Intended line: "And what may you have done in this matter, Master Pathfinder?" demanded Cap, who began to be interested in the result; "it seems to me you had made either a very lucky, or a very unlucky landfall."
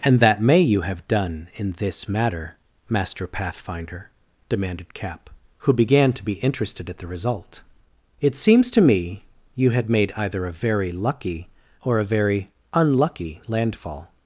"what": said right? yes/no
no